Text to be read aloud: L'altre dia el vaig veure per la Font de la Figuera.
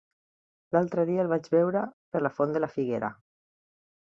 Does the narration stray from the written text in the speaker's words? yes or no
no